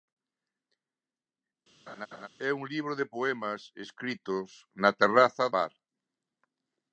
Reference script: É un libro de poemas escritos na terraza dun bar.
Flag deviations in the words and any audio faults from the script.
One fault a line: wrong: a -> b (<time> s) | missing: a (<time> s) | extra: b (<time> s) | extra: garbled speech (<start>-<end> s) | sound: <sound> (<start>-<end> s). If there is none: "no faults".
sound: laugh (1.9-2.3 s)
missing: dun (5.4 s)